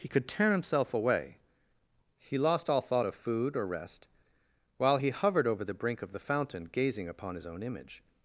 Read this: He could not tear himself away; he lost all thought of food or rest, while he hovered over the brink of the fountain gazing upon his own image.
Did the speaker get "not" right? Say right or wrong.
wrong